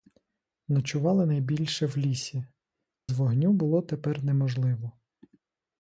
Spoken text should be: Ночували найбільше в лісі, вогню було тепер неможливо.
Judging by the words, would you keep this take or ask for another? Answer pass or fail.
pass